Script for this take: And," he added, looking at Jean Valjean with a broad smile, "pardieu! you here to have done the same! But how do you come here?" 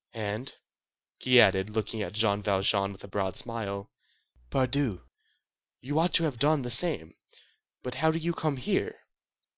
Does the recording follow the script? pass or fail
fail